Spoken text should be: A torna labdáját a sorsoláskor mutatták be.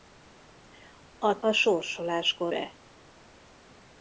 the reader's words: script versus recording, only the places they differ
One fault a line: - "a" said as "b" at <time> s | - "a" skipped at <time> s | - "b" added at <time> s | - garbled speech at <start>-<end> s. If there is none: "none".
- "torna labdáját" skipped at 1.4 s
- "mutatták" skipped at 2.5 s